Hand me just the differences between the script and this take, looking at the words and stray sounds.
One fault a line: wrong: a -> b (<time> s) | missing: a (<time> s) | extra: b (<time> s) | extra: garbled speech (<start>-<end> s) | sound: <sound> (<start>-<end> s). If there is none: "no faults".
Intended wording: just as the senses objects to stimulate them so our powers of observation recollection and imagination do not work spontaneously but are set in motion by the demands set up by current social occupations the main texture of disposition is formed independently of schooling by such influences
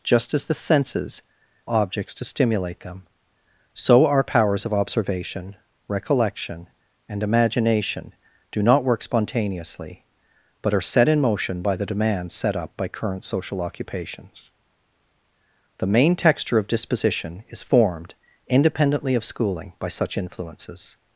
no faults